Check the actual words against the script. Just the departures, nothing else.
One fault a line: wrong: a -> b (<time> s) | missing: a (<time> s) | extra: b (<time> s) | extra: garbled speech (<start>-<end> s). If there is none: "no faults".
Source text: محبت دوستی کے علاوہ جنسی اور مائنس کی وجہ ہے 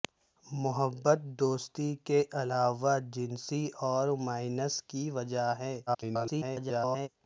extra: garbled speech (5.9-7.1 s)